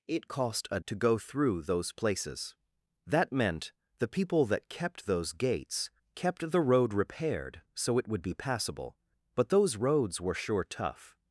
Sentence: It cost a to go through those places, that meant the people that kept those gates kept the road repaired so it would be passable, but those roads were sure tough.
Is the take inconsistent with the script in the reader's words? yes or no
no